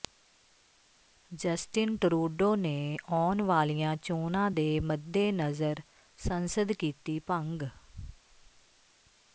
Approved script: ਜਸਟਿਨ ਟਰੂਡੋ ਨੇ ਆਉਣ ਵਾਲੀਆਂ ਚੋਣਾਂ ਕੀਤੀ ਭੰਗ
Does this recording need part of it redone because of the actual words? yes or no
yes